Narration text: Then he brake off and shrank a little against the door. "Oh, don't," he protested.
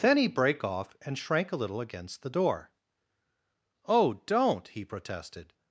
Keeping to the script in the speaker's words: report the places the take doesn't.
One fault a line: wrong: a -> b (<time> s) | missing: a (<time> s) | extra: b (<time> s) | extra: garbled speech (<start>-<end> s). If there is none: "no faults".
no faults